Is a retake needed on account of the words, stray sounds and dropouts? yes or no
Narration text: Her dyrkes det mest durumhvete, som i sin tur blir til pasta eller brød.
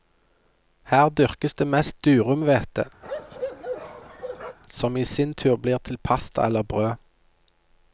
yes